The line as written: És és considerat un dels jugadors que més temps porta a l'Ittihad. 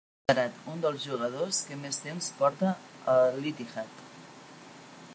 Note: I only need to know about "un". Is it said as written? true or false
true